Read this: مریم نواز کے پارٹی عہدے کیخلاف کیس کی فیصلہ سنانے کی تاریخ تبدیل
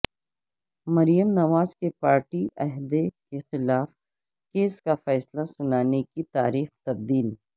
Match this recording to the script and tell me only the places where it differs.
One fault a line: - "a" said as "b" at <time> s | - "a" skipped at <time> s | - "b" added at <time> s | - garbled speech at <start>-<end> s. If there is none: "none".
- "کی" said as "کا" at 4.8 s